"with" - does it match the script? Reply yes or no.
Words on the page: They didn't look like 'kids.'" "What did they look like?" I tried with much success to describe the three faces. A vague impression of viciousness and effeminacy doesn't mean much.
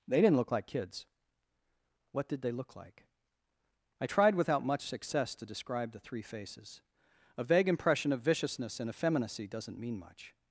no